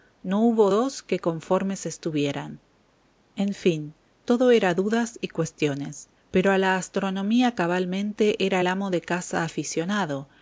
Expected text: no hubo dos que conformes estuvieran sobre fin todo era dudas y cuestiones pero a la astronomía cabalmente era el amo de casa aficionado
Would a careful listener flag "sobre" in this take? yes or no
yes